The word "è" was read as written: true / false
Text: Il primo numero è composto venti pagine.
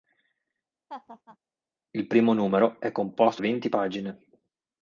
true